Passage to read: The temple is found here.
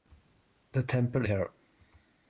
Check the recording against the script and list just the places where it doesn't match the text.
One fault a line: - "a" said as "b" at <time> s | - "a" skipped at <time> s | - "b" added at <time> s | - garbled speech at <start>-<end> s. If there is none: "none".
- "is found" skipped at 1.3 s